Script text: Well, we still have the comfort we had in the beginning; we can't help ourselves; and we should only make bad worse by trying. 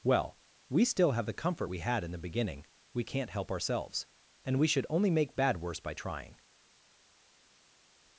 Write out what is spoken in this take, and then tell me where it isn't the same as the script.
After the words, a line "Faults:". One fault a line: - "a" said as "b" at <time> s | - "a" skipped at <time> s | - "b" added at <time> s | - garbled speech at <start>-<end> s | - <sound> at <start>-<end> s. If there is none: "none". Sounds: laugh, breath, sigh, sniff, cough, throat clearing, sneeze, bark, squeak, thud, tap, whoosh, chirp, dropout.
Well, we still have the comfort we had in the beginning; we can't help ourselves; and we should only make bad worse by trying.
Faults:
none